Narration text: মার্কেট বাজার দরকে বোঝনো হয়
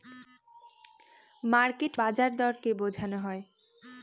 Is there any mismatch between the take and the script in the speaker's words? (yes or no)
no